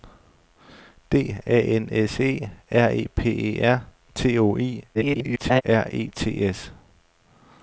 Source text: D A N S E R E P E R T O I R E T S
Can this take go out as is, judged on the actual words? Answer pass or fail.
fail